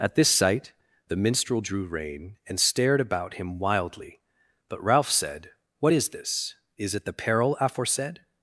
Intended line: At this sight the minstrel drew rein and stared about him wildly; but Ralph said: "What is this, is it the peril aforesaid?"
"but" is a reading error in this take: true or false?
false